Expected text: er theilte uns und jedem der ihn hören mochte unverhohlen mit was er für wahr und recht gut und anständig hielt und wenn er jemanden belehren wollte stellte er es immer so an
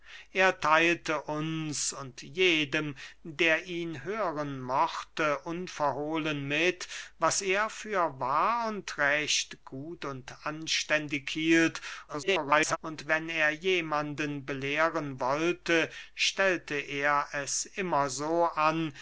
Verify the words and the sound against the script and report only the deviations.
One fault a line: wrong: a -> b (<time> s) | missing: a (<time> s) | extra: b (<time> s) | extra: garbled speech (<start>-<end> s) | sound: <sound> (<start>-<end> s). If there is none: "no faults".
extra: garbled speech (12.1-12.8 s)